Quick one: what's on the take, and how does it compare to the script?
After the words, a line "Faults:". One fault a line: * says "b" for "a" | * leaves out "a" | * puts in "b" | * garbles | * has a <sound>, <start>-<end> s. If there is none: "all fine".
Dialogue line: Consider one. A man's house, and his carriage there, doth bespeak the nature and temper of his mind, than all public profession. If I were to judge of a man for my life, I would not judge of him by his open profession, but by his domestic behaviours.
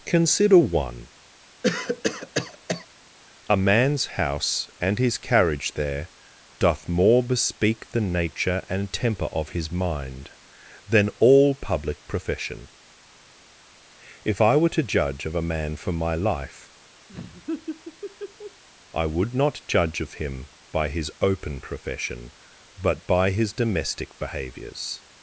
Consider one. A man's house, and his carriage there, doth more bespeak the nature and temper of his mind, than all public profession. If I were to judge of a man for my life, I would not judge of him by his open profession, but by his domestic behaviours.
Faults:
* has a cough, 1.6-2.9 s
* puts in "more"
* has a laugh, 17.1-18.6 s